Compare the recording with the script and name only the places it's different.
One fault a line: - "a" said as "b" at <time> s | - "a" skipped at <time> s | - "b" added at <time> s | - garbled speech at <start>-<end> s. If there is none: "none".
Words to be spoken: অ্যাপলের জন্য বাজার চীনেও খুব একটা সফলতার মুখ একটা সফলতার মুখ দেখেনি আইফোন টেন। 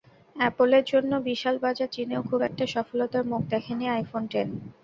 - "বিশাল" added at 1.3 s
- "একটা সফলতার মুখ" skipped at 3.4 s